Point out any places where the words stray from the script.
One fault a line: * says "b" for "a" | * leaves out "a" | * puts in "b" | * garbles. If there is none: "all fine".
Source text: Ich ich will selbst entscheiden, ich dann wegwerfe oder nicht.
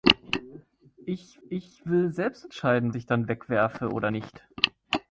all fine